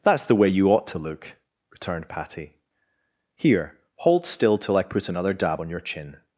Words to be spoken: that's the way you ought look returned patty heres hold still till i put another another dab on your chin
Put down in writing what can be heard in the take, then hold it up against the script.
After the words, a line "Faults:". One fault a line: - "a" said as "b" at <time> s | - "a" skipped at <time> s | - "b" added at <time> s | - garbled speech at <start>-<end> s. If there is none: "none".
that's the way you ought to look returned patty here hold still till i put another dab on your chin
Faults:
- "to" added at 0.9 s
- "heres" said as "here" at 3.4 s
- "another" skipped at 5.3 s